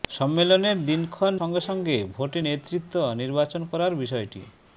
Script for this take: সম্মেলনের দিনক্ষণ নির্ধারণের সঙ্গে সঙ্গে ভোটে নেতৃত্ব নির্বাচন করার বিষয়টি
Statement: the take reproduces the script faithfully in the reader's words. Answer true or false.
false